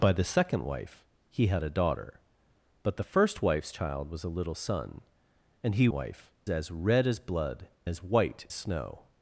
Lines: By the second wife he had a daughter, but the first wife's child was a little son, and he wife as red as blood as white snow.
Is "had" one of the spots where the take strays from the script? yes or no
no